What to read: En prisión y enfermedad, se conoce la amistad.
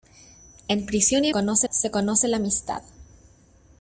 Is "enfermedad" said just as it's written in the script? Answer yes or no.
no